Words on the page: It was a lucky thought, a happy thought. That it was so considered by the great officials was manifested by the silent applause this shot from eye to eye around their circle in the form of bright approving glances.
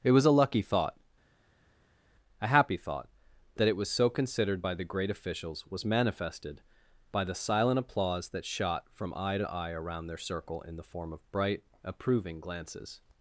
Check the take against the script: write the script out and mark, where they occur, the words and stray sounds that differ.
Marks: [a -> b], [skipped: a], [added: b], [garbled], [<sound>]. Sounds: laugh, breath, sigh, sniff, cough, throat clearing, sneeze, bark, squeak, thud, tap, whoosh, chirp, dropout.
It was a lucky thought, a happy thought. That it was so considered by the great officials was manifested by the silent applause [this -> that] shot from eye to eye around their circle in the form of bright approving glances.